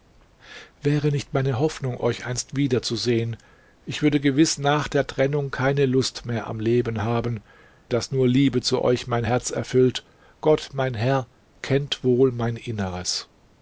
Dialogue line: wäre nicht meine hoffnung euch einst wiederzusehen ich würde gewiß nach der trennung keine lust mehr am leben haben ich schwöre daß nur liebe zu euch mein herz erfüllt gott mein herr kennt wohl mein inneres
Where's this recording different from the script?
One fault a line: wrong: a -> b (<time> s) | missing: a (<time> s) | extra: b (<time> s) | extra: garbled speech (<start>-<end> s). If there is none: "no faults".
missing: ich schwöre (7.4 s)